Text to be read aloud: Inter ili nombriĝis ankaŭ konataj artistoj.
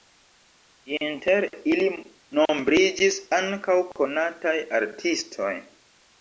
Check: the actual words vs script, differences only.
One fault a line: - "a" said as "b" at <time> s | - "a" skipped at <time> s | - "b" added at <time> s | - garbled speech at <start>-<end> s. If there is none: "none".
none